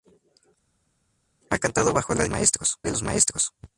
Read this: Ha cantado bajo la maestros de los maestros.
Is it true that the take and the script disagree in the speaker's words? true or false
false